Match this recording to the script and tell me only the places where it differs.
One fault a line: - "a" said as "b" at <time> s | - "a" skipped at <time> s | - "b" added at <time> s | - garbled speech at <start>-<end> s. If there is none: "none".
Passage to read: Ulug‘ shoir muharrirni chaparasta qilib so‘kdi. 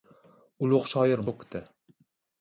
- "muharrirni chaparasta qilib" skipped at 1.3 s